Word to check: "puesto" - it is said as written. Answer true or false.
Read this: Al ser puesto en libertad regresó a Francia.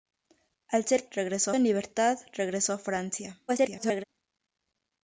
false